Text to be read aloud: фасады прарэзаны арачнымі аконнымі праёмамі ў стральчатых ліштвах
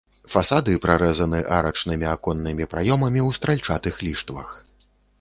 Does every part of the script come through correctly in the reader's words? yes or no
yes